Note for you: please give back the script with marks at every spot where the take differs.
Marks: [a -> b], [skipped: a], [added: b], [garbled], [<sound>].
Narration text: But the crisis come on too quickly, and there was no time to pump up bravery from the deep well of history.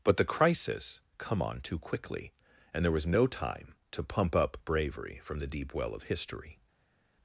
But the crisis come on too quickly, and there was no time to pump up bravery from the deep well of history.